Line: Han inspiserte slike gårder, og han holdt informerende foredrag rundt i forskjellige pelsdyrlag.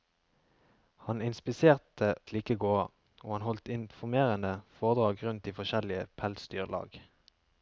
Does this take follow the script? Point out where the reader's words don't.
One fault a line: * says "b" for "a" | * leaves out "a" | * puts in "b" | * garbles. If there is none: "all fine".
all fine